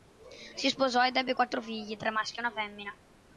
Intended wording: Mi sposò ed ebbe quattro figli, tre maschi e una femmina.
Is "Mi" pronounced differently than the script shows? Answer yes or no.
yes